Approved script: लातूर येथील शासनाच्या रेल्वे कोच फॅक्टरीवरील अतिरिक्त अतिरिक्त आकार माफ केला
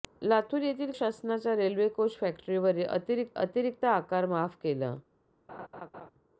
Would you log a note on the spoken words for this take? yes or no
no